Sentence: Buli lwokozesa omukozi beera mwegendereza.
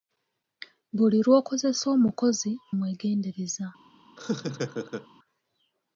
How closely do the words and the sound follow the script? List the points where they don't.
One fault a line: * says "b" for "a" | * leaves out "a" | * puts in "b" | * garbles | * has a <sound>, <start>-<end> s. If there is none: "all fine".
* leaves out "beera"
* has a laugh, 4.2-5.1 s